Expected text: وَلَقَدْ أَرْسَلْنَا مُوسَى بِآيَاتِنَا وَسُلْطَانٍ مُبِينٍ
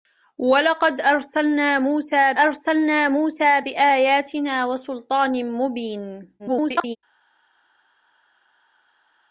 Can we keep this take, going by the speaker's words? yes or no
no